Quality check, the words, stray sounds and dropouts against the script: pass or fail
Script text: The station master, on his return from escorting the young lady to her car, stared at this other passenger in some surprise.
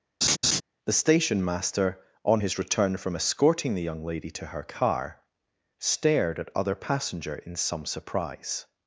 fail